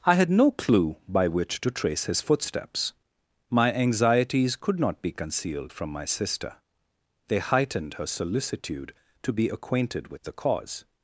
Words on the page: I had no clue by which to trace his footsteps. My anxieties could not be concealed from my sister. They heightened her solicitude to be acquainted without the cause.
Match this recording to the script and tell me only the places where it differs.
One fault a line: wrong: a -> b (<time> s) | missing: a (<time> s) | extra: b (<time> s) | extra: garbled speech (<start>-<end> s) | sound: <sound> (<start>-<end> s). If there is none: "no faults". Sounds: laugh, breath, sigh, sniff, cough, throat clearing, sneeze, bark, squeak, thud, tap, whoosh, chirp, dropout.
wrong: without -> with (10.1 s)